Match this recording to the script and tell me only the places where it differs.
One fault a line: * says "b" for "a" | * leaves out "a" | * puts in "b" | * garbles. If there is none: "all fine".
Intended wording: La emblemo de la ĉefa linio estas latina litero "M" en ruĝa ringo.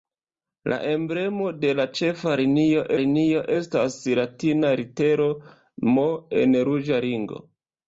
* puts in "linio"